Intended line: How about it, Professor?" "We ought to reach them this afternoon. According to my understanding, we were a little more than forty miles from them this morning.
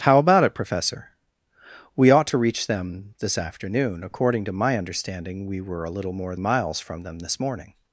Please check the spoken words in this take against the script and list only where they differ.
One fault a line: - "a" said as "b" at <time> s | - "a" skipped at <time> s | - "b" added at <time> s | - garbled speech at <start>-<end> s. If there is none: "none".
- "than forty" skipped at 6.3 s